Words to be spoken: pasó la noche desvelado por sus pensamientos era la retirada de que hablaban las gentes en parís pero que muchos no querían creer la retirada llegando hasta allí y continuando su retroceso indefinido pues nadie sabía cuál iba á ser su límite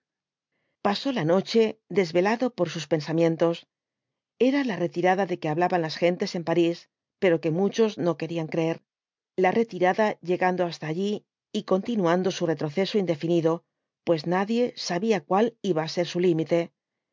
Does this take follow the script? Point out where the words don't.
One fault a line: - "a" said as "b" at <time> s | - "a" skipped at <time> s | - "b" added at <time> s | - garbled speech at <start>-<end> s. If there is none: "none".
none